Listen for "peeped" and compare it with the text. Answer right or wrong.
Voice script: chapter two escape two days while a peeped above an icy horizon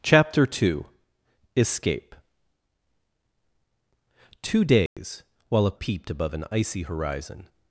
right